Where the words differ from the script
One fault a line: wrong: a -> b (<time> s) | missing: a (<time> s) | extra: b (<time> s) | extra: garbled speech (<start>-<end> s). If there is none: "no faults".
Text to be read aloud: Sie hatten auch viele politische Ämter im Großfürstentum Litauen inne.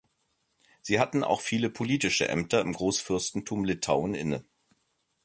no faults